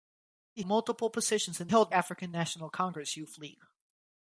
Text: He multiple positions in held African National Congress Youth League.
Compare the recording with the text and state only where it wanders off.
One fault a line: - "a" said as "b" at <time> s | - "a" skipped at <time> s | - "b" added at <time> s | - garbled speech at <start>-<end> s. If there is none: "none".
none